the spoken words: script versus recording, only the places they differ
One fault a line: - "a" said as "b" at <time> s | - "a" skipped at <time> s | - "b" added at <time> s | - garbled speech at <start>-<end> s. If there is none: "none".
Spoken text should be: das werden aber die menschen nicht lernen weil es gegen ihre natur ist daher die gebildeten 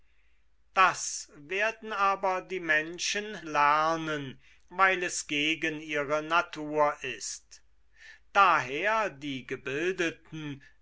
- "nicht" skipped at 3.4 s